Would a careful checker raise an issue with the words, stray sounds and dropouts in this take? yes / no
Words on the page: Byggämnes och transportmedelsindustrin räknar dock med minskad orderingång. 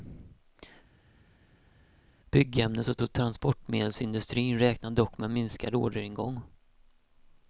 yes